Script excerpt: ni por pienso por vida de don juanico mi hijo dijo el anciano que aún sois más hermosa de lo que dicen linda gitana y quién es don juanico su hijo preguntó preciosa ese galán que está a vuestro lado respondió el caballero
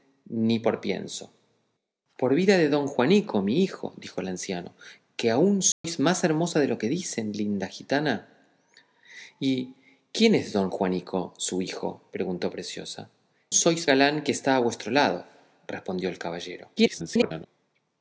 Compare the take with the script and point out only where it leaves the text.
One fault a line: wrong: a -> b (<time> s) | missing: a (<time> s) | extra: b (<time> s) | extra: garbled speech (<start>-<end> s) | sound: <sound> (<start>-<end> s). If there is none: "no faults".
sound: dropout (5.7-5.8 s)
wrong: ese -> sois (13.5 s)
extra: garbled speech (16.8-17.5 s)